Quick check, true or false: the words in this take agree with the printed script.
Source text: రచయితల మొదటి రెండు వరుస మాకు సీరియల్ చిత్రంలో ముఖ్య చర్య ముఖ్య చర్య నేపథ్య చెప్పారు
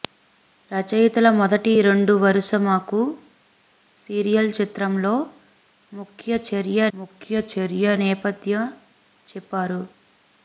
true